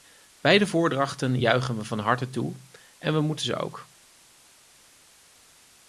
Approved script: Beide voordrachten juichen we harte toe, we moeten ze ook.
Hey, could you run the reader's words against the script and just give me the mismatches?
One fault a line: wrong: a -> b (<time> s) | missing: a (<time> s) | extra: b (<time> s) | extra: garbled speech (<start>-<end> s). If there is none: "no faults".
extra: van (1.8 s)
extra: en (3.0 s)